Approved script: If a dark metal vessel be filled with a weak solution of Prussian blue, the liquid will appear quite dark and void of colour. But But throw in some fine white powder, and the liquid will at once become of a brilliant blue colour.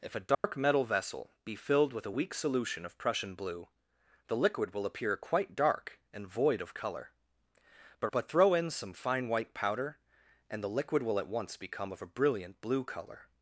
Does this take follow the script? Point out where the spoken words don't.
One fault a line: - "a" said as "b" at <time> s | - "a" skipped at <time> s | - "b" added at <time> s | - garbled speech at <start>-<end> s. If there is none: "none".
none